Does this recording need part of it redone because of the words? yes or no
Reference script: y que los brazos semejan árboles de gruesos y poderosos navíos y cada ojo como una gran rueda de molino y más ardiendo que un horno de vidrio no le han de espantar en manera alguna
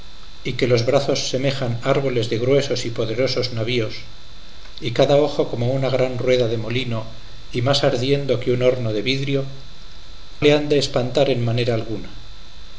yes